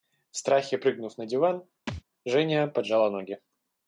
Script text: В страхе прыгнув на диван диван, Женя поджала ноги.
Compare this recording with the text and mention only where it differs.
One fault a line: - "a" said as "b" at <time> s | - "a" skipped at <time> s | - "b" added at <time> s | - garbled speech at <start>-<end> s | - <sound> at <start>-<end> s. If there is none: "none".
- "диван" skipped at 1.7 s
- thud at 1.9-2.0 s